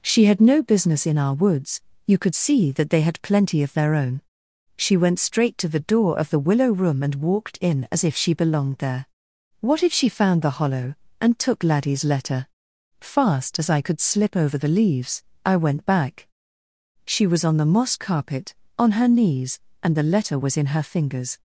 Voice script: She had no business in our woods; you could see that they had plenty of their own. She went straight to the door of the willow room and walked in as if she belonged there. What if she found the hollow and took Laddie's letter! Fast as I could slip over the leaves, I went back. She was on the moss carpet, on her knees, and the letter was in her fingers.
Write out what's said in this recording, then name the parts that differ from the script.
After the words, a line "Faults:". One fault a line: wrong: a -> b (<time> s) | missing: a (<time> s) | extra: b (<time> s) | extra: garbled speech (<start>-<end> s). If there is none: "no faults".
She had no business in our woods; you could see that they had plenty of their own. She went straight to the door of the willow room and walked in as if she belonged there. What if she found the hollow and took Laddie's letter! Fast as I could slip over the leaves, I went back. She was on the moss carpet, on her knees, and the letter was in her fingers.
Faults:
no faults